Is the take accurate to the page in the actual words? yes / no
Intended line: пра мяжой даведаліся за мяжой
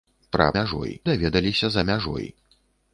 yes